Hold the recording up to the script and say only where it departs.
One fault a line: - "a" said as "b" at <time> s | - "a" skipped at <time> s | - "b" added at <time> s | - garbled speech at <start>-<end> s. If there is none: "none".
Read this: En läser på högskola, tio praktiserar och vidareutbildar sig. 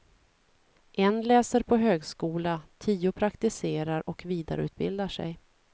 none